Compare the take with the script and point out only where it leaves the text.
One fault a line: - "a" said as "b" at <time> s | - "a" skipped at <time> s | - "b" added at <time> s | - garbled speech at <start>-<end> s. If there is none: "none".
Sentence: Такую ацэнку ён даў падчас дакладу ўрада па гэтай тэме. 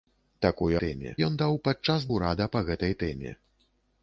- "ацэнку" said as "тэме" at 0.9 s
- "дакладу" skipped at 2.1 s